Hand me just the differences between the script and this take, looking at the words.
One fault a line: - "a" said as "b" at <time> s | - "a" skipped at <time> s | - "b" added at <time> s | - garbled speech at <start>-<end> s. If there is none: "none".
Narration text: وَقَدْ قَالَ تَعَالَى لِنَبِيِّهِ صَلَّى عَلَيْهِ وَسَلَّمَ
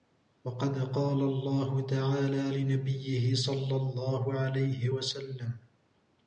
- "اللَّهُ" added at 1.2 s
- "اللَّهُ" added at 3.8 s